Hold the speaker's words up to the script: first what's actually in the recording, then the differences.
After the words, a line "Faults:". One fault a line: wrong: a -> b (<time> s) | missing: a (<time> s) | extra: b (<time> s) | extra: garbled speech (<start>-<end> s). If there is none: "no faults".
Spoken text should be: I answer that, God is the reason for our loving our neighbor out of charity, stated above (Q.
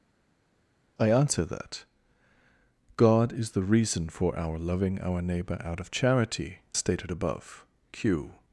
I answer that, God is the reason for our loving our neighbor out of charity, stated above (Q.
Faults:
no faults